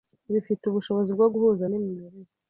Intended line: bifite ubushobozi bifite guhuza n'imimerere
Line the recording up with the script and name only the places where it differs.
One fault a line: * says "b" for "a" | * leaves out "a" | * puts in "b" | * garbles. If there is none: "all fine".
* says "bwo" for "bifite"